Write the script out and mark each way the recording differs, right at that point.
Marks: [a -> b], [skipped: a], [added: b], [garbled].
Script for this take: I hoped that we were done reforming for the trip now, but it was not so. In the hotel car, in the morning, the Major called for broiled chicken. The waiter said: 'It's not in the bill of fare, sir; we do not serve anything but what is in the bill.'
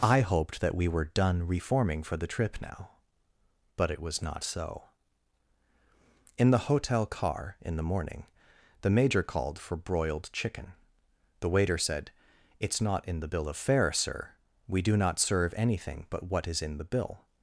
I hoped that we were done reforming for the trip now, but it was not so. In the hotel car, in the morning, the Major called for broiled chicken. The waiter said: 'It's not in the bill of fare, sir; we do not serve anything but what is in the bill.'